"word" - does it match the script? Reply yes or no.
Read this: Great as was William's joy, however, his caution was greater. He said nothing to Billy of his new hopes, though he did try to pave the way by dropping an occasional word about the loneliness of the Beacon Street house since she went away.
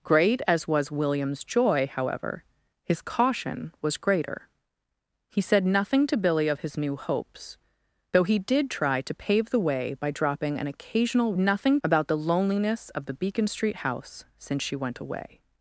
no